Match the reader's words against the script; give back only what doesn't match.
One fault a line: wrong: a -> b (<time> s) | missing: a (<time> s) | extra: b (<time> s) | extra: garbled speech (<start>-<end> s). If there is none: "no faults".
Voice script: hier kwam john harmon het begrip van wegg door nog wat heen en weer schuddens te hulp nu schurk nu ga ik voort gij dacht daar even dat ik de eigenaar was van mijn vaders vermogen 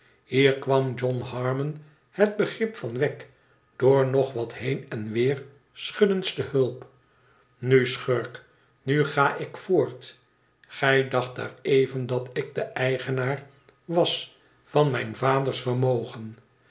no faults